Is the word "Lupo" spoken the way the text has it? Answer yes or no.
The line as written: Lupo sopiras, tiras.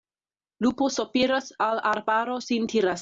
yes